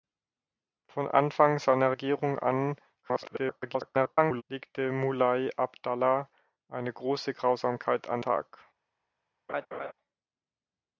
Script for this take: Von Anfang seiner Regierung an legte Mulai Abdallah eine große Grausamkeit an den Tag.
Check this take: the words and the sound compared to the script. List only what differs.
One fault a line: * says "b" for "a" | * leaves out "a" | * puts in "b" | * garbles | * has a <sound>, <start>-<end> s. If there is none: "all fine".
* garbles
* leaves out "den"
* has a laugh, 9.5-9.9 s